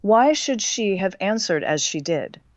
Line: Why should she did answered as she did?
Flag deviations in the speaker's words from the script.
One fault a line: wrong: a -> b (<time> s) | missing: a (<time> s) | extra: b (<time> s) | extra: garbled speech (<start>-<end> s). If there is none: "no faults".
wrong: did -> have (1.0 s)